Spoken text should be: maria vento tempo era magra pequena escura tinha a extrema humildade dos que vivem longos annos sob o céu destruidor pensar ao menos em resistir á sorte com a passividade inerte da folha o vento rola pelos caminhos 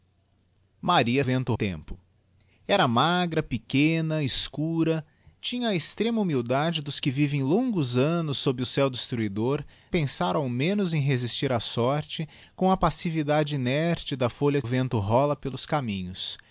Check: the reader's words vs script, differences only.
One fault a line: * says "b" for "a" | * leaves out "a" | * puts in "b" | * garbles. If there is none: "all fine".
all fine